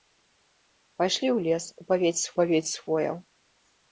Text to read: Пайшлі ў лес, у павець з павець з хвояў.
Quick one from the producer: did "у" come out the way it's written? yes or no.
yes